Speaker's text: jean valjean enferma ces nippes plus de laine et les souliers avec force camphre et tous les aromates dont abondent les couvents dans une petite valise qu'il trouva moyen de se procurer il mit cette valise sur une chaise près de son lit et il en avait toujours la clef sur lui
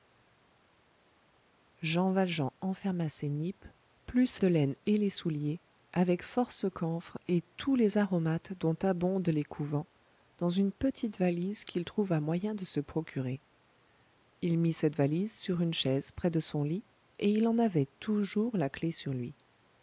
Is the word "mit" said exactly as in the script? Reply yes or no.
yes